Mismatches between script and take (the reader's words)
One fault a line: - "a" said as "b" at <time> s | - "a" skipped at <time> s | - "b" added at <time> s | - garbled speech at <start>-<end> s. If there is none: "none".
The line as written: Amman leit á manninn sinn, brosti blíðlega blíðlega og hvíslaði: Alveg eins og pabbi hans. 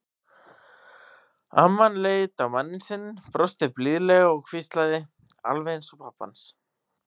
- "blíðlega" skipped at 4.3 s